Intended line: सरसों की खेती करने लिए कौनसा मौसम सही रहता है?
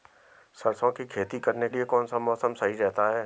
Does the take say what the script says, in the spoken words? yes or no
yes